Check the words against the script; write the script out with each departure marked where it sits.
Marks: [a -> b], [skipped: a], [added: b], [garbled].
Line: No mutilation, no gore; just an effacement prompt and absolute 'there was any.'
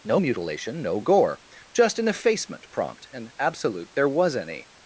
No mutilation, no gore; just an effacement prompt and absolute 'there was any.'